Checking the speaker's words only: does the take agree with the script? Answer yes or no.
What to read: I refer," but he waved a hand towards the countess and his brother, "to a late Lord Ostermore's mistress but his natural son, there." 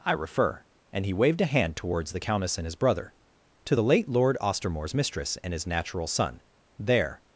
no